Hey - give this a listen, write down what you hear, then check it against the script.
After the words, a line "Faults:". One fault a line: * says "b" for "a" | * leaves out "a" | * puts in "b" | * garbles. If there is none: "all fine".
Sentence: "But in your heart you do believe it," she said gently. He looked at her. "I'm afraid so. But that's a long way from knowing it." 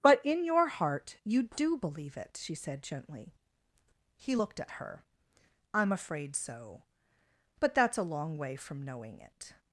"But in your heart you do believe it," she said gently. He looked at her. "I'm afraid so. But that's a long way from knowing it."
Faults:
all fine